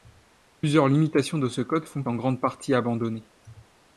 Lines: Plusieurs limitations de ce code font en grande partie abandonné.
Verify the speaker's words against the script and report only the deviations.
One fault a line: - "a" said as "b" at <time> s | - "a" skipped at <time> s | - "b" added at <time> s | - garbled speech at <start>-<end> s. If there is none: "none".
none